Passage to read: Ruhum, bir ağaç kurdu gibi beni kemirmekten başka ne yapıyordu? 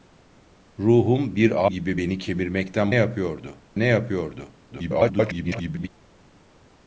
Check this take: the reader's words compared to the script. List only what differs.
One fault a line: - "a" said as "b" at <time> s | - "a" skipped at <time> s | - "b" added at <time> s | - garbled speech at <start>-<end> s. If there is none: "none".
- "ağaç kurdu" skipped at 1.7 s
- "başka" said as "yapıyordu" at 2.9 s
- garbled speech at 4.7-5.9 s